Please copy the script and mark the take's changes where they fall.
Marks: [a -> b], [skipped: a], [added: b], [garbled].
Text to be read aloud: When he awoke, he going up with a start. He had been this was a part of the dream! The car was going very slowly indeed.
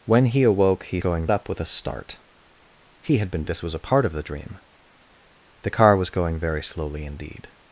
When he awoke, he going up with a start. He had been this was a part of the dream! The car was going very slowly indeed.